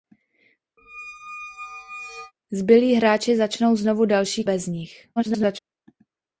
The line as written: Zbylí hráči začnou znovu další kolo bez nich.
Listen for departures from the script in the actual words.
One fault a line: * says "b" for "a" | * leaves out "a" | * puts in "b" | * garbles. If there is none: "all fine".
* leaves out "kolo"
* garbles